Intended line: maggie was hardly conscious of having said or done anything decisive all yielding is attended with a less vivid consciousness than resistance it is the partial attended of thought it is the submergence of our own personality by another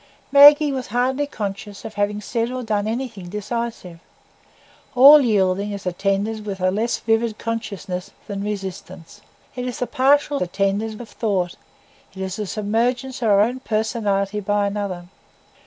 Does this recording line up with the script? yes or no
yes